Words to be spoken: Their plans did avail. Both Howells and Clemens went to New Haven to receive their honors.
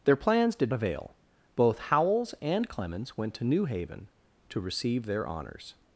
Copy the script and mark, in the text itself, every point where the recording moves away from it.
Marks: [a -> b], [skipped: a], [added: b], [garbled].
Their plans did avail. Both Howells and Clemens went to New Haven to receive their honors.